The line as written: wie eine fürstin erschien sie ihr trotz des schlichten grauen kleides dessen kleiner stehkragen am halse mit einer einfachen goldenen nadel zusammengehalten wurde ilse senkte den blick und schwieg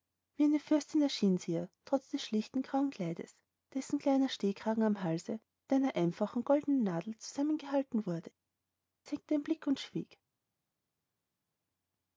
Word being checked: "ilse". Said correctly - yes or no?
no